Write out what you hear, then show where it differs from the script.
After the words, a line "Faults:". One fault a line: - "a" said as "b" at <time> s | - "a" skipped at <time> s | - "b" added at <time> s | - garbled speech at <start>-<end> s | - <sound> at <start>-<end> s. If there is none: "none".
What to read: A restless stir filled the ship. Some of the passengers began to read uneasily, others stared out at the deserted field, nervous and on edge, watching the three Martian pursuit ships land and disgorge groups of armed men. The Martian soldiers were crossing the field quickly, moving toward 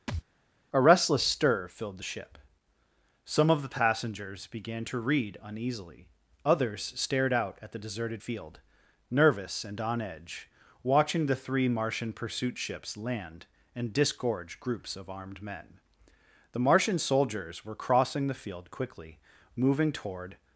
A restless stir filled the ship. Some of the passengers began to read uneasily, others stared out at the deserted field, nervous and on edge, watching the three Martian pursuit ships land and disgorge groups of armed men. The Martian soldiers were crossing the field quickly, moving toward
Faults:
- thud at 0.1-0.2 s